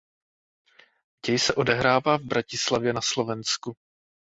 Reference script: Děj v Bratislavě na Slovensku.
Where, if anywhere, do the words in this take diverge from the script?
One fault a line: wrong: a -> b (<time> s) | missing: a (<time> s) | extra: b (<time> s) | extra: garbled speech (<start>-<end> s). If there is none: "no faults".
extra: se odehrává (1.4 s)